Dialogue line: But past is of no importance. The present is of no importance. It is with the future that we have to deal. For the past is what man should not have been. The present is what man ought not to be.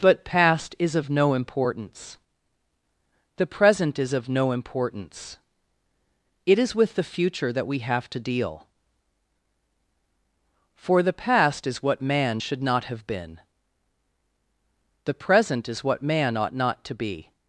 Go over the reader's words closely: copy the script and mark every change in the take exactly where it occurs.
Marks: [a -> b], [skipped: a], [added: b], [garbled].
But past is of no importance. The present is of no importance. It is with the future that we have to deal. For the past is what man should not have been. The present is what man ought not to be.